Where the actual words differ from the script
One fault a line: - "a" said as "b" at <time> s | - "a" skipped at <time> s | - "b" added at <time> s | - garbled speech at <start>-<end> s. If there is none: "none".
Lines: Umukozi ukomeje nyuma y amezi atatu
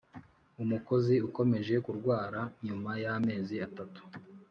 - "kurwara" added at 1.8 s